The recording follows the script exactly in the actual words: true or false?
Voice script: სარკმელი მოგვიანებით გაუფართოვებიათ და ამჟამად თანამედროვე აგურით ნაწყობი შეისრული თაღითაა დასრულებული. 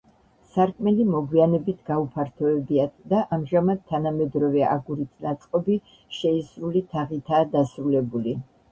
true